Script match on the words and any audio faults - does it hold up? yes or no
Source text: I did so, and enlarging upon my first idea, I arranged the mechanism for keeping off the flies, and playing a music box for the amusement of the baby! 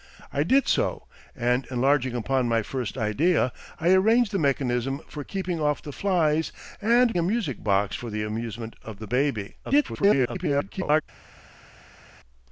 no